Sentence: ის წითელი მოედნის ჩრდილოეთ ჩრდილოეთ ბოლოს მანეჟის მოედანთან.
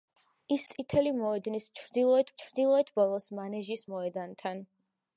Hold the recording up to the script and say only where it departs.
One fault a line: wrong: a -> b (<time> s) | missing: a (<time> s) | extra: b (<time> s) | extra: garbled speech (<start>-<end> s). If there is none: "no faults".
no faults